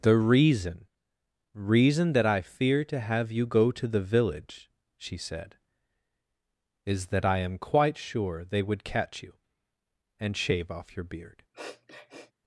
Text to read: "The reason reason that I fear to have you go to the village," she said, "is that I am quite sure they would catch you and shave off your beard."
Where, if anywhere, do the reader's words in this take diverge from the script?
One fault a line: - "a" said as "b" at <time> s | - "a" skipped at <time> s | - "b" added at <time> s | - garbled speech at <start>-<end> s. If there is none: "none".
none